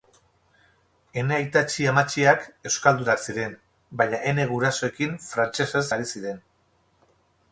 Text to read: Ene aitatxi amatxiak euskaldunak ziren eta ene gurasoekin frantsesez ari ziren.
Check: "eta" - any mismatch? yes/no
yes